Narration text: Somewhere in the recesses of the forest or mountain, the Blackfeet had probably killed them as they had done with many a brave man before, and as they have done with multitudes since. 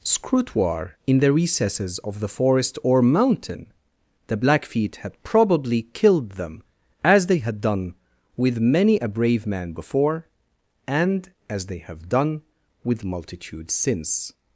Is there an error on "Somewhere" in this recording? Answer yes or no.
yes